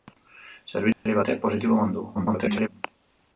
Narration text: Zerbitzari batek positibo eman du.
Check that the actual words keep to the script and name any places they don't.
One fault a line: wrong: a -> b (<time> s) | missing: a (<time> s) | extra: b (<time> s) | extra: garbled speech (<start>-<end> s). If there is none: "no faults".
extra: garbled speech (2.1-2.7 s)